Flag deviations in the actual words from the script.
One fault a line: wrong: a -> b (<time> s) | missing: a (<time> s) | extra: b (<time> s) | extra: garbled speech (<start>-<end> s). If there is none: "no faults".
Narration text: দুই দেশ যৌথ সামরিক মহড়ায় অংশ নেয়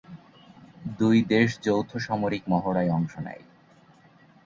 no faults